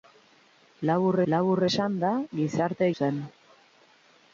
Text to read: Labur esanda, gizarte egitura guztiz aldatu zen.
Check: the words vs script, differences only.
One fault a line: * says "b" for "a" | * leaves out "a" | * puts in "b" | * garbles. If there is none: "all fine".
* puts in "labur"
* leaves out "egitura guztiz aldatu"